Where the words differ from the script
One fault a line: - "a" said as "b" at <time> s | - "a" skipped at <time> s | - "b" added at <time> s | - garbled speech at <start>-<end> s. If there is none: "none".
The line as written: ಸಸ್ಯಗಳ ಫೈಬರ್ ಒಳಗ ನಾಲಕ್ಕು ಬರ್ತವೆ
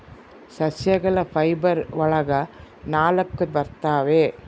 none